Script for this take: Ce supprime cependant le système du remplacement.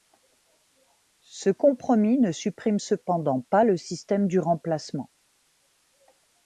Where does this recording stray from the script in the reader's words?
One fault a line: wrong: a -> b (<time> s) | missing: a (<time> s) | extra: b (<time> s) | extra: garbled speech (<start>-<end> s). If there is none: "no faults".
extra: compromis ne (1.5 s)
extra: pas (3.5 s)